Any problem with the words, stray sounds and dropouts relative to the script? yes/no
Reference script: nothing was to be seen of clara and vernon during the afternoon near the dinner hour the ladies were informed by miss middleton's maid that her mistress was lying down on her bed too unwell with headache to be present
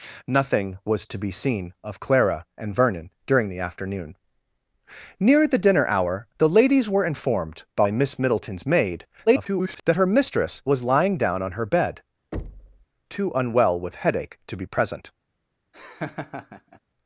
yes